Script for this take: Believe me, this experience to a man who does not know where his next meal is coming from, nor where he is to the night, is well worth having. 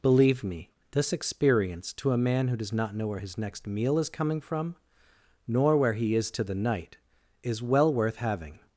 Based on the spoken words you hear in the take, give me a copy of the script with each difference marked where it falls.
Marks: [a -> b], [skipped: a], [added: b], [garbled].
Believe me, this experience to a man who does not know where his next meal is coming from, nor where he is to the night, is well worth having.